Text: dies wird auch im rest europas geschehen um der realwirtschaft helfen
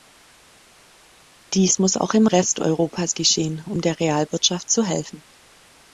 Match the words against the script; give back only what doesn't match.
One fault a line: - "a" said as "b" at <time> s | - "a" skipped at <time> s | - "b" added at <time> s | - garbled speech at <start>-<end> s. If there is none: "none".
- "wird" said as "muss" at 1.8 s
- "zu" added at 4.7 s